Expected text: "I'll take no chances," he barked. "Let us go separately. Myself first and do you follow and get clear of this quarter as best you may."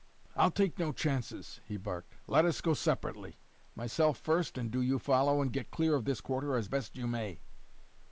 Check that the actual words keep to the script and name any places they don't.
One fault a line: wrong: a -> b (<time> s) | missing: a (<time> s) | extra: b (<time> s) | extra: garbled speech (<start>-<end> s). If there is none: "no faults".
no faults